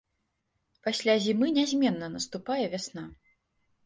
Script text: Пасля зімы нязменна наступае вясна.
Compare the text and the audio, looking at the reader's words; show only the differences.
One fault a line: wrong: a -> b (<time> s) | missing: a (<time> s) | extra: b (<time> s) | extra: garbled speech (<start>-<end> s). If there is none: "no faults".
no faults